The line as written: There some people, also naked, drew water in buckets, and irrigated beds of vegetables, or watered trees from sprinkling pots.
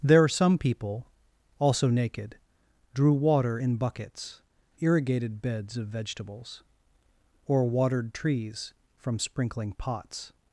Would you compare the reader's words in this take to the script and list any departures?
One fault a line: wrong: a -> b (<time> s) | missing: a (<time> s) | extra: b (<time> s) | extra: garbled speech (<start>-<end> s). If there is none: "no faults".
missing: and (4.4 s)